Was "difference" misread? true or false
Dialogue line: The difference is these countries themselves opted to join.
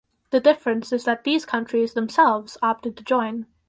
false